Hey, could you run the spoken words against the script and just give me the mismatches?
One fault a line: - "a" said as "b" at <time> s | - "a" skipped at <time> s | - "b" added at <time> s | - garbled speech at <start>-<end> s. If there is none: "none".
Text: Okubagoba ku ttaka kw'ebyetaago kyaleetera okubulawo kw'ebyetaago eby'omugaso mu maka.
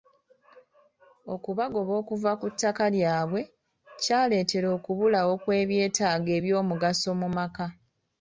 - "okuva" added at 2.0 s
- "kw'ebyetaago" said as "lyabwe" at 3.0 s